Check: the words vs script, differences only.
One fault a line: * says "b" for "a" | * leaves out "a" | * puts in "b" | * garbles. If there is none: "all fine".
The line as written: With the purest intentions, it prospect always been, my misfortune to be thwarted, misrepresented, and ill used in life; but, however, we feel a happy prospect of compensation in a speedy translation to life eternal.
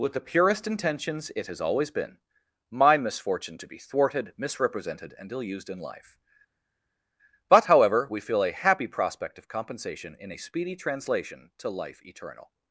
* says "has" for "prospect"